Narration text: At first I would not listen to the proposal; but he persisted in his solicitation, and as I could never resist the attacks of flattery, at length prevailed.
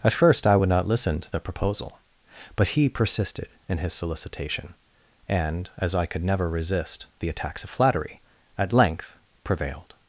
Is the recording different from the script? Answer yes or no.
no